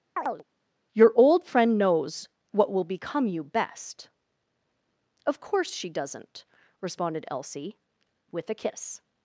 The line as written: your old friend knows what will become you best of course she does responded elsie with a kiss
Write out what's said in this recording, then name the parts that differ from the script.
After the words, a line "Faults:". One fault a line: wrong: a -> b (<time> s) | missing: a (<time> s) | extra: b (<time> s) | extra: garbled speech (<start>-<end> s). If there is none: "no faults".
your old friend knows what will become you best of course she doesn't responded elsie with a kiss
Faults:
wrong: does -> doesn't (5.9 s)